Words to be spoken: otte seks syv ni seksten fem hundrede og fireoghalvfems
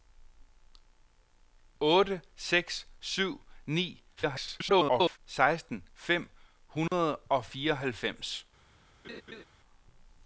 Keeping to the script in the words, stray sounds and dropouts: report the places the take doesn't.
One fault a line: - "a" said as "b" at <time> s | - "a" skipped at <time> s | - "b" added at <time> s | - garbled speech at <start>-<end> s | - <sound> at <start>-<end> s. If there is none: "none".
- garbled speech at 4.2-5.2 s
- dropout at 6.9-6.9 s
- laugh at 9.0-9.4 s